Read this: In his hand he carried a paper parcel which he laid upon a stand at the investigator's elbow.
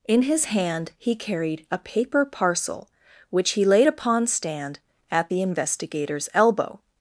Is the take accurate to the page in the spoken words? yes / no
no